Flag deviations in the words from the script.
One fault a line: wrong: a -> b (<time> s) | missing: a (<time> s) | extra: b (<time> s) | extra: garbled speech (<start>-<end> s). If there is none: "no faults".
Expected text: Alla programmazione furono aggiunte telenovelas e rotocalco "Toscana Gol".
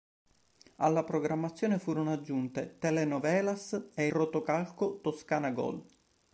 no faults